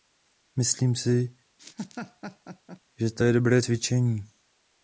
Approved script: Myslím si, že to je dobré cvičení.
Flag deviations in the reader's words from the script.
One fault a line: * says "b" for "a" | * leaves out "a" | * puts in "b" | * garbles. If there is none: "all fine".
all fine